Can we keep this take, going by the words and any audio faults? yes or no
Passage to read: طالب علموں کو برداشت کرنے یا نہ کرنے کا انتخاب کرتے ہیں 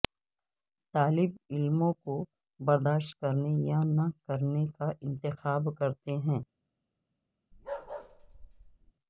no